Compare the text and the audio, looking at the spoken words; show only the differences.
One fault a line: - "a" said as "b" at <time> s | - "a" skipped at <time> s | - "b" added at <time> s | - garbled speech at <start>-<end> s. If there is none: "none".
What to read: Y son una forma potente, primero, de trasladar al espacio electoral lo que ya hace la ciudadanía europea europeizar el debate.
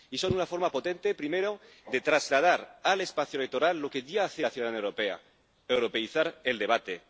none